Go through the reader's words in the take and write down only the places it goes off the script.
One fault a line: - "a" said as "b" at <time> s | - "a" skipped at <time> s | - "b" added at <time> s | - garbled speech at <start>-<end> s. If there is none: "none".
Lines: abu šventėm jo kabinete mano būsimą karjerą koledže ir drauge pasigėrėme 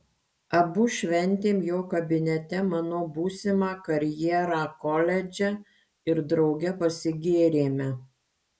none